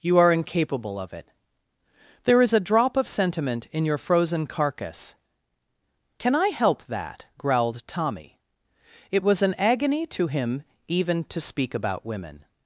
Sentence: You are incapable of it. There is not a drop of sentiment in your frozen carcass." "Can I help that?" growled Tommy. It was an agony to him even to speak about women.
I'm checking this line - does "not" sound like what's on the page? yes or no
no